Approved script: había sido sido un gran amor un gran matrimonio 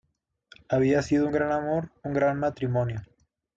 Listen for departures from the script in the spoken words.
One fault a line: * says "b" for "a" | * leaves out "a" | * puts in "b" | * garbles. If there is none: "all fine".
* leaves out "sido"